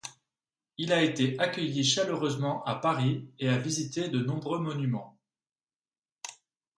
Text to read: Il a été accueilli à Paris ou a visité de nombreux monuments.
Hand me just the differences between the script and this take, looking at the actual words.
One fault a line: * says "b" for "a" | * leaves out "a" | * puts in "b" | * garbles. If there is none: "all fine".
* puts in "chaleureusement"
* says "et" for "ou"